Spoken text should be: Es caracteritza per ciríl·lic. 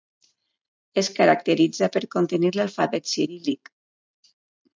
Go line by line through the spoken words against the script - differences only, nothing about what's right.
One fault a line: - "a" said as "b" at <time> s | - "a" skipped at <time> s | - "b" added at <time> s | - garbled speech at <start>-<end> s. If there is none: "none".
- "contenir l'alfabet" added at 2.1 s